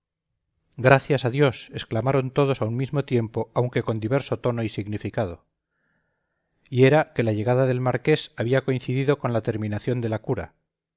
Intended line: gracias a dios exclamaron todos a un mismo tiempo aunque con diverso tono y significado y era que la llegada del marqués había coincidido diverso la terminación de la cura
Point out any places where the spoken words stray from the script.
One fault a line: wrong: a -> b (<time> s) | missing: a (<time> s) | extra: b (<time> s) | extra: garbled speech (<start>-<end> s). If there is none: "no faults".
wrong: diverso -> con (9.2 s)